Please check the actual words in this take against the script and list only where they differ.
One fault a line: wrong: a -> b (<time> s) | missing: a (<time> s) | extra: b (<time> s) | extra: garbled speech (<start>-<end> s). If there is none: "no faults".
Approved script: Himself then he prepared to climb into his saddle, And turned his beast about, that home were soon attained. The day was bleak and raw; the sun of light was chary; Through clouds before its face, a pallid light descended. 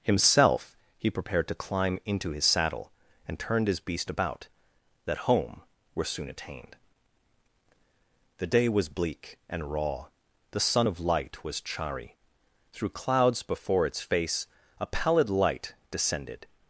missing: then (0.8 s)